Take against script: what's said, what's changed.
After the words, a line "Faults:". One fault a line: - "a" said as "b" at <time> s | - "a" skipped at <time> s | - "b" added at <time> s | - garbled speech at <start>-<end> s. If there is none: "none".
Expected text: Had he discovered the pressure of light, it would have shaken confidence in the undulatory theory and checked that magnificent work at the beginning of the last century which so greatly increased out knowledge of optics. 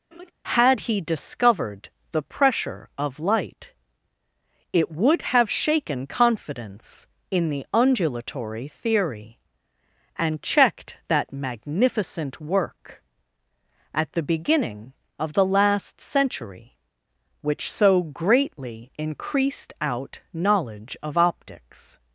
Had he discovered the pressure of light, it would have shaken confidence in the undulatory theory and checked that magnificent work at the beginning of the last century which so greatly increased out knowledge of optics.
Faults:
none